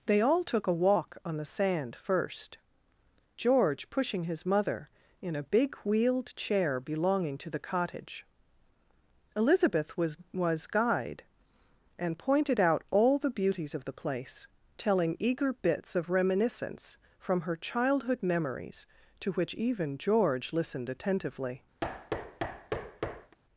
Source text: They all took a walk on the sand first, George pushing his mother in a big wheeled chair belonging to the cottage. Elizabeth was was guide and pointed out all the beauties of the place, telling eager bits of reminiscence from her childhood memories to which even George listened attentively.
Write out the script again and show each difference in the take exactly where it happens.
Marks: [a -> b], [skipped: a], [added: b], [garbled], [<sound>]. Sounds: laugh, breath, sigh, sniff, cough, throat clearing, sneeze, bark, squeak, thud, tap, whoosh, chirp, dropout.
They all took a walk on the sand first, George pushing his mother in a big wheeled chair belonging to the cottage. Elizabeth was was guide and pointed out all the beauties of the place, telling eager bits of reminiscence from her childhood memories to which even George listened attentively. [thud]